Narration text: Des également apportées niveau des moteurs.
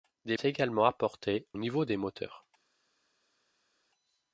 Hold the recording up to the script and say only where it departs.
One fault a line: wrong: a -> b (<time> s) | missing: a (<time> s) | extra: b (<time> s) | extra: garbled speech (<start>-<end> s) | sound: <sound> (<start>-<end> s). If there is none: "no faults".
no faults